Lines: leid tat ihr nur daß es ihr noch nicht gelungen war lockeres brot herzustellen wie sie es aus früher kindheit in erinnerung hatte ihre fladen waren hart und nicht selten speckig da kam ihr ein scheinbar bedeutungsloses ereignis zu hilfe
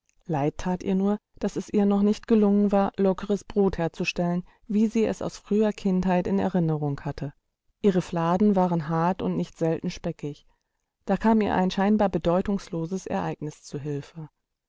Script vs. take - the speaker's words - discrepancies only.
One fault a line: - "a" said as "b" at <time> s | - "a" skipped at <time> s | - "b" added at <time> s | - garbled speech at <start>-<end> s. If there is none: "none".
none